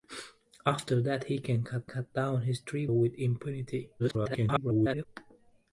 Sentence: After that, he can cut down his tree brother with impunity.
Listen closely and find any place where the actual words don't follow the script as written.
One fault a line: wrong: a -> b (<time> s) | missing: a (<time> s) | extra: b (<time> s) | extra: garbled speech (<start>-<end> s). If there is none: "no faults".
extra: cut (1.9 s)
missing: brother (2.9 s)
extra: garbled speech (4.0-5.1 s)